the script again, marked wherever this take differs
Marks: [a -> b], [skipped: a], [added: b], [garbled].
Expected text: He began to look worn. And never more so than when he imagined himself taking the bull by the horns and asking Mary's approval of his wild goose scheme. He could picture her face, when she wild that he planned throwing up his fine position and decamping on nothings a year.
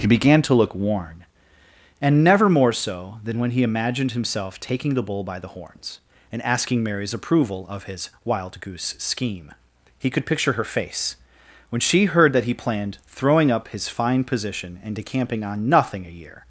He began to look worn. And never more so than when he imagined himself taking the bull by the horns and asking Mary's approval of his wild goose scheme. He could picture her face, when she [wild -> heard] that he planned throwing up his fine position and decamping on [nothings -> nothing] a year.